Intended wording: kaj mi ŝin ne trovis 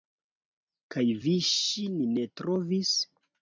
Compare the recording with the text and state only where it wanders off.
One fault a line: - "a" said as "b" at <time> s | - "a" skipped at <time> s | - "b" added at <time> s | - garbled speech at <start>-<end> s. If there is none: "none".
- "mi" said as "vi" at 1.2 s